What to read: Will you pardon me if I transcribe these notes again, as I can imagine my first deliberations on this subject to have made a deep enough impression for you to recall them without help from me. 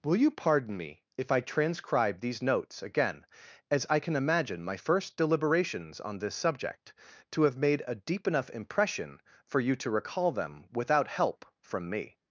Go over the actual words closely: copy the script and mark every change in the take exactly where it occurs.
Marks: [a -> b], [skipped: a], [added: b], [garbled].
Will you pardon me if I transcribe these notes again, as I can imagine my first deliberations on this subject to have made a deep enough impression for you to recall them without help from me.